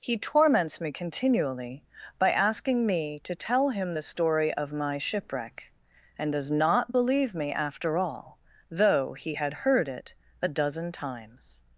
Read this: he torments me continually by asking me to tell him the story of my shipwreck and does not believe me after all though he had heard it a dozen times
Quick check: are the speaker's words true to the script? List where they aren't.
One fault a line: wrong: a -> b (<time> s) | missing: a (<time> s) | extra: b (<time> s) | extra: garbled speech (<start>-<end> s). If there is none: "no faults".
no faults